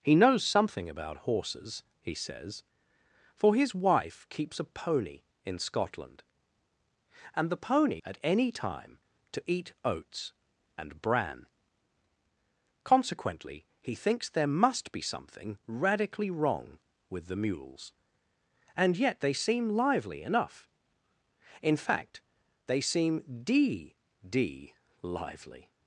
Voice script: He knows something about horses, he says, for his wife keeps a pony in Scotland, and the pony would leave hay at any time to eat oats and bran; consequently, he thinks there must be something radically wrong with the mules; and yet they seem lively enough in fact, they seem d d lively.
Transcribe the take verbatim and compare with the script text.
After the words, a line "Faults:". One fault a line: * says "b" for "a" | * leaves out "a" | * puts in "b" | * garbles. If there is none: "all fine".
He knows something about horses, he says, for his wife keeps a pony in Scotland, and the pony at any time to eat oats and bran; consequently, he thinks there must be something radically wrong with the mules; and yet they seem lively enough in fact, they seem d d lively.
Faults:
* leaves out "would leave hay"